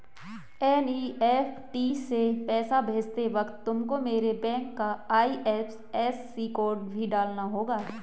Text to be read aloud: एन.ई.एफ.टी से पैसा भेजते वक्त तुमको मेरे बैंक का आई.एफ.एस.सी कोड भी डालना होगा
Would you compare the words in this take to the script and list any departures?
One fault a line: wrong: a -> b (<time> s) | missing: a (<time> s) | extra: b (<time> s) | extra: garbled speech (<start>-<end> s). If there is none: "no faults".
no faults